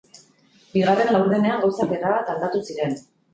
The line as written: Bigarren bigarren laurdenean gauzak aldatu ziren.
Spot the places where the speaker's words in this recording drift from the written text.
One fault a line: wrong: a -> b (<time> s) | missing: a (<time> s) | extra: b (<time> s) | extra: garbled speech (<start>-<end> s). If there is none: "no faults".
missing: bigarren (1.1 s)
extra: erabat (2.0 s)